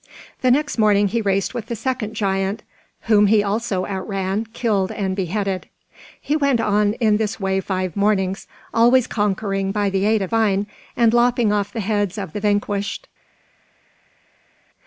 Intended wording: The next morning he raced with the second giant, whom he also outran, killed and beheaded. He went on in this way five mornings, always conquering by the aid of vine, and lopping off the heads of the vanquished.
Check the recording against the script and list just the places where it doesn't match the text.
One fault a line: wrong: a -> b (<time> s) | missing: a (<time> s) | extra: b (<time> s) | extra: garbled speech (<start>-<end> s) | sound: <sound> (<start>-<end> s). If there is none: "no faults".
no faults